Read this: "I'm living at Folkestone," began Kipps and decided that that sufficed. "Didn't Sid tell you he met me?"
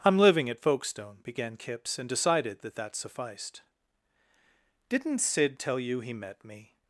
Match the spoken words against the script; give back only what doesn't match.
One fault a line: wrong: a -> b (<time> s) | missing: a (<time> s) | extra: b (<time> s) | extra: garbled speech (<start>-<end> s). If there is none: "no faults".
no faults